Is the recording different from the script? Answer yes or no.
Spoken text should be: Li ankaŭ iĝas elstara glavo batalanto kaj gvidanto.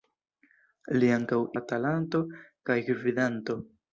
yes